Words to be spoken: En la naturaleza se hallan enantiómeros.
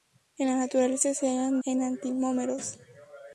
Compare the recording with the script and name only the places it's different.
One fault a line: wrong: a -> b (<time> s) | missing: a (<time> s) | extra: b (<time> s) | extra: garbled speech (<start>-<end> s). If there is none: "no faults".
no faults